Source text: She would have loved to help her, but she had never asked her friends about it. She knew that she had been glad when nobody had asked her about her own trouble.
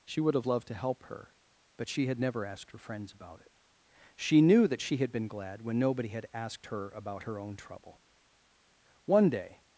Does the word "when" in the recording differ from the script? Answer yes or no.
no